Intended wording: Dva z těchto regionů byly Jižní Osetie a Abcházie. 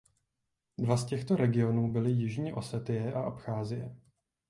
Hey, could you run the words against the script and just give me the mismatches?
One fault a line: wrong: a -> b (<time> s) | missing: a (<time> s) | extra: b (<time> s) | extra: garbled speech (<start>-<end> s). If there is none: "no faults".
no faults